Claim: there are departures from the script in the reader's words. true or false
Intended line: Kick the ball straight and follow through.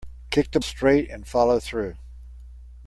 true